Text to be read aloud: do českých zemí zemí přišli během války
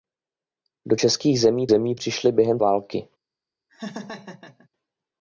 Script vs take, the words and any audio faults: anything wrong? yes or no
yes